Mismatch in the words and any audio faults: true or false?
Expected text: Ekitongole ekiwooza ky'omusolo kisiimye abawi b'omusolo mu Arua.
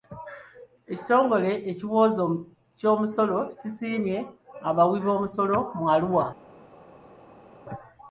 false